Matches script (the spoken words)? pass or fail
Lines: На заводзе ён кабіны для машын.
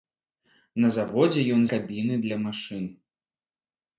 pass